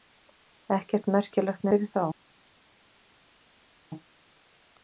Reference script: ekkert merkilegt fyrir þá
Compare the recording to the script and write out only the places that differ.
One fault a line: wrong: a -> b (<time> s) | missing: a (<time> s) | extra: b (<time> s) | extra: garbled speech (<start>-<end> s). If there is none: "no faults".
no faults